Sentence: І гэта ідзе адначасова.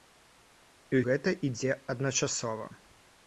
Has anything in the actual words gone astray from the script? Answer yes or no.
no